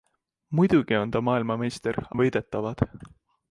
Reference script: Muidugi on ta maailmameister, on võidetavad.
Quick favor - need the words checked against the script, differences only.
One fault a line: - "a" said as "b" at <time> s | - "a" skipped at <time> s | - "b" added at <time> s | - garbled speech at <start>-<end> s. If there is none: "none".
none